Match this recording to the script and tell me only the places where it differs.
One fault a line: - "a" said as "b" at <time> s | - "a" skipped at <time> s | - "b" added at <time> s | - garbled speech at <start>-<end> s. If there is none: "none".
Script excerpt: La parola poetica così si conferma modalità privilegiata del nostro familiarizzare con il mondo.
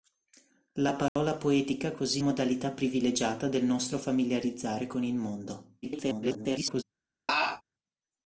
- "si conferma" skipped at 2.2 s
- garbled speech at 5.8-6.8 s